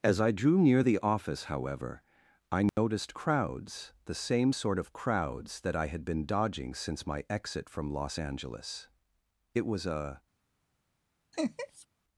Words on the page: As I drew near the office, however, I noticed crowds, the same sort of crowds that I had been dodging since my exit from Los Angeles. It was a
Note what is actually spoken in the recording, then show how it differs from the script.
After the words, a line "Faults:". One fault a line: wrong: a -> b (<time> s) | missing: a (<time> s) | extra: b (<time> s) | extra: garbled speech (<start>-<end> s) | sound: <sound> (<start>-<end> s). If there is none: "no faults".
As I drew near the office, however, I noticed crowds, the same sort of crowds that I had been dodging since my exit from Los Angeles. It was a
Faults:
sound: dropout (2.7-2.8 s)
sound: laugh (11.3-11.9 s)